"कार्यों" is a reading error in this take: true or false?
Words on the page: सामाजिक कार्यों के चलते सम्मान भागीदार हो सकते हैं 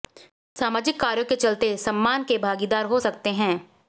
false